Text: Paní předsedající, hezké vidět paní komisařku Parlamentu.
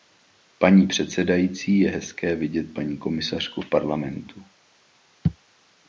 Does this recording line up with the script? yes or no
no